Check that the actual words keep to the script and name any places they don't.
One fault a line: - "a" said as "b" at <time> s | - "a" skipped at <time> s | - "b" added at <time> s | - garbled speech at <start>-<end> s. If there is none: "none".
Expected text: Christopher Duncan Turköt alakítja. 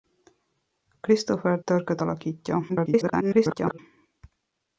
- "Duncan" skipped at 1.6 s
- garbled speech at 2.7-3.8 s